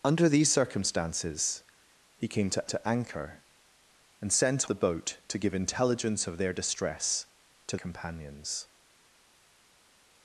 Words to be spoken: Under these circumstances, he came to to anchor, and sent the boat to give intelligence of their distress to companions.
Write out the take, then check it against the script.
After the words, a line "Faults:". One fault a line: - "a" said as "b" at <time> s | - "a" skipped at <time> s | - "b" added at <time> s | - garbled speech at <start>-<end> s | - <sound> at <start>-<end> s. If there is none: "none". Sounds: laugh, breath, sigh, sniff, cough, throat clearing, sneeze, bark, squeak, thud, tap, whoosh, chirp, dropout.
Under these circumstances, he came to to anchor, and sent the boat to give intelligence of their distress to companions.
Faults:
none